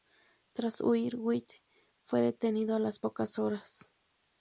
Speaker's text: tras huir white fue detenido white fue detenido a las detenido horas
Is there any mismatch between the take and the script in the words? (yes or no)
yes